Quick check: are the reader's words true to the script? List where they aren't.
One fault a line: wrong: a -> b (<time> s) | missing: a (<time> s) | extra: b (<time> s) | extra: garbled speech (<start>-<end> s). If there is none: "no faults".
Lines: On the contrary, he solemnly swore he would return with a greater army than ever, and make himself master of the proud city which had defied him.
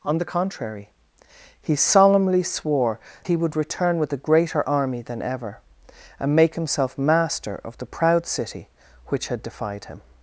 no faults